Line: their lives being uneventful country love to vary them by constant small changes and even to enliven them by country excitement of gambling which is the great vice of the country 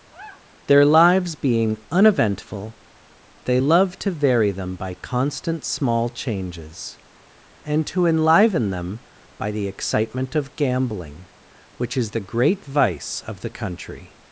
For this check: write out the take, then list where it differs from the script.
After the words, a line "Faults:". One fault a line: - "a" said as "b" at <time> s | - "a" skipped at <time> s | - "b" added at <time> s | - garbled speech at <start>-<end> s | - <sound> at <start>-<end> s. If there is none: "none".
their lives being uneventful they love to vary them by constant small changes and to enliven them by the excitement of gambling which is the great vice of the country
Faults:
- sigh at 0.1-0.5 s
- "country" said as "they" at 3.4 s
- "even" skipped at 7.9 s
- "country" said as "the" at 9.5 s